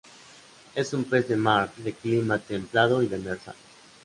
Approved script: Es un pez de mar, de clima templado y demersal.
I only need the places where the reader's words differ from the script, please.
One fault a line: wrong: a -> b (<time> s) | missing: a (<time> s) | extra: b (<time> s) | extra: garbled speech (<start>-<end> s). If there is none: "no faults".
no faults